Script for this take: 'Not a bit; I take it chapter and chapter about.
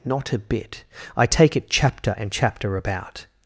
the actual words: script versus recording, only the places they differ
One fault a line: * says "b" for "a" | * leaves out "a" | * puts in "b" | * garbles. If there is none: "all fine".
all fine